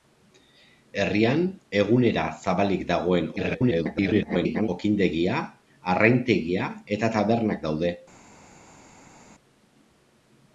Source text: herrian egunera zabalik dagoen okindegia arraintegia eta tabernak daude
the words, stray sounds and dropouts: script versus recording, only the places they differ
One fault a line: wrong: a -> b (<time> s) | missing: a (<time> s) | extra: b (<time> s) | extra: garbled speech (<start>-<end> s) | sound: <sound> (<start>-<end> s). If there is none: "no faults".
extra: garbled speech (3.4-4.7 s)